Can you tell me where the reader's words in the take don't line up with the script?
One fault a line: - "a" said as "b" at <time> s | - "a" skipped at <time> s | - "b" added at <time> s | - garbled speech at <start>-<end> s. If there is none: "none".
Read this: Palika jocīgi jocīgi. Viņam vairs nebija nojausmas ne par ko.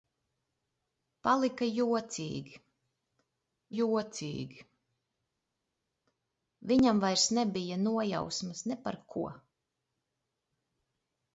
none